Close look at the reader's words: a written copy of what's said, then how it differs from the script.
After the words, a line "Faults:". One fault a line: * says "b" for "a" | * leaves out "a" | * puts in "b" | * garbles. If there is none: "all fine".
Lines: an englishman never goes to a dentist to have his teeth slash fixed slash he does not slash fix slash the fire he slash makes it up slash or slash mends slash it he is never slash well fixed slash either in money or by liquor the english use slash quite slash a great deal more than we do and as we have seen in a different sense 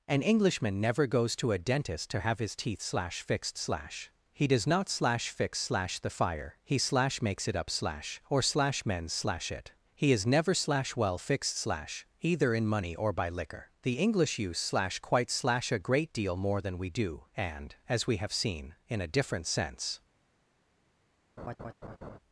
an englishman never goes to a dentist to have his teeth slash fixed slash he does not slash fix slash the fire he slash makes it up slash or slash mends slash it he is never slash well fixed slash either in money or by liquor the english use slash quite slash a great deal more than we do and as we have seen in a different sense
Faults:
all fine